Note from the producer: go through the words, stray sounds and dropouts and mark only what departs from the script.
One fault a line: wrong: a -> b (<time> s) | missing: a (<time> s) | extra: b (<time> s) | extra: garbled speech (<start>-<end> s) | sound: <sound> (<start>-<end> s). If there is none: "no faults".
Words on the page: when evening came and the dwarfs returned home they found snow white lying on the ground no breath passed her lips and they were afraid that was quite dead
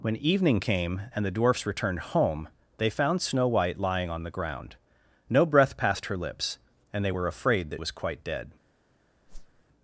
sound: whoosh (9.3-9.6 s)